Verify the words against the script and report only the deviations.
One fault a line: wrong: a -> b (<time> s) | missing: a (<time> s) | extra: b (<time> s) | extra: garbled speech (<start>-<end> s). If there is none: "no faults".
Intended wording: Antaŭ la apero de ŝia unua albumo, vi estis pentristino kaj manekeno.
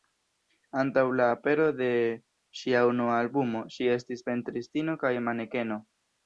wrong: vi -> ŝi (3.8 s)